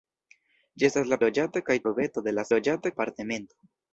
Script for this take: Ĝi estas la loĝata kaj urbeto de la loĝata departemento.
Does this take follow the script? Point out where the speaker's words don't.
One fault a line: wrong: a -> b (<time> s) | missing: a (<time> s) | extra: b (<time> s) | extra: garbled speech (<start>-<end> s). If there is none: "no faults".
no faults